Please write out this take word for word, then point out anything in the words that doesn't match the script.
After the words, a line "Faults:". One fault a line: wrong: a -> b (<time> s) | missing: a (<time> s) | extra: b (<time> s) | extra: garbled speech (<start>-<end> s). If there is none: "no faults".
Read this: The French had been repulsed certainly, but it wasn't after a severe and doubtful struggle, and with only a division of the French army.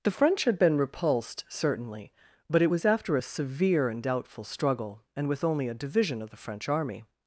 The French had been repulsed certainly, but it was after a severe and doubtful struggle, and with only a division of the French army.
Faults:
wrong: wasn't -> was (2.7 s)